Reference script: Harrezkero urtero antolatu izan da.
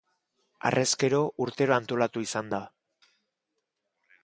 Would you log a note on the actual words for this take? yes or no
no